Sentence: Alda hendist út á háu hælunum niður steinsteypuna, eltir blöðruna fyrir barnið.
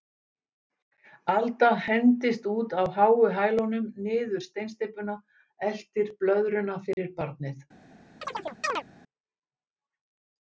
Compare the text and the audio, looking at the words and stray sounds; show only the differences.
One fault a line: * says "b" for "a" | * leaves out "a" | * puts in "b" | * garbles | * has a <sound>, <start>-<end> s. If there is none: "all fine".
* has a dropout, 6.9-7.0 s
* has a chirp, 8.2-8.8 s